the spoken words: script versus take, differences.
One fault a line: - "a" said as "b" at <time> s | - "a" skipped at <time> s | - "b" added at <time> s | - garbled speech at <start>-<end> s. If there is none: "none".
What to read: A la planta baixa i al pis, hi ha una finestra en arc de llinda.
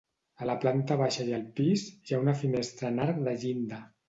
none